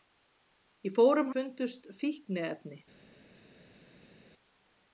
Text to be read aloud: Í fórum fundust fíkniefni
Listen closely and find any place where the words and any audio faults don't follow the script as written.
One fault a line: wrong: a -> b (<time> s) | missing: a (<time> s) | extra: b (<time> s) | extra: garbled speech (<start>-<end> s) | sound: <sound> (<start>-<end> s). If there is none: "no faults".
no faults